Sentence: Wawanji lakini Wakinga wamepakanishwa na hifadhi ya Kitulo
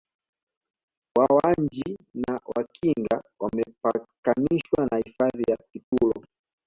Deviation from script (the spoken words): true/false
true